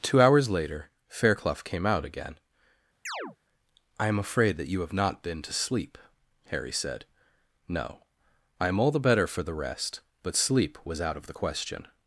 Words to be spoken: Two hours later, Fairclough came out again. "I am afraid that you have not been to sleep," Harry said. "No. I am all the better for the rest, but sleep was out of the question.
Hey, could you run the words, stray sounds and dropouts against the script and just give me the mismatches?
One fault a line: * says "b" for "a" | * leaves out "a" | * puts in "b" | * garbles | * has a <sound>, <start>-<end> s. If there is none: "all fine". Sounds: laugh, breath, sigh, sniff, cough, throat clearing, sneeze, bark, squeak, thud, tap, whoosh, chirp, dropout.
* has a chirp, 3.1-3.4 s